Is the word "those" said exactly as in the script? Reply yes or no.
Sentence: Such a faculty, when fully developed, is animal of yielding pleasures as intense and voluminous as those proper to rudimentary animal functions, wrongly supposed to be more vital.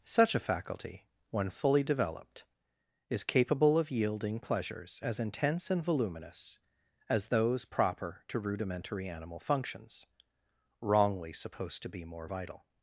yes